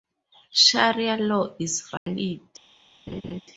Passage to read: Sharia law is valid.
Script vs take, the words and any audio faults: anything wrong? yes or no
yes